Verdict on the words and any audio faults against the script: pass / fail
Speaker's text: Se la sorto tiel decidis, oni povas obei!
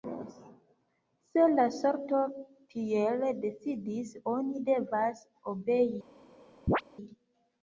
fail